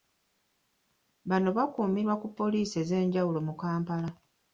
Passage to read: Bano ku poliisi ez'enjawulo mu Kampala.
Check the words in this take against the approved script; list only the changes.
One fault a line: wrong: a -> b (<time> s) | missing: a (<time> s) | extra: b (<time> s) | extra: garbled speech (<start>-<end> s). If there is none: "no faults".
extra: bakuumirwa (1.6 s)